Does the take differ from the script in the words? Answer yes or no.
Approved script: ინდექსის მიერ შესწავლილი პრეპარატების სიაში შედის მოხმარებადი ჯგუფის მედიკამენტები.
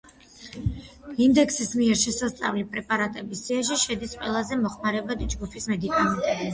yes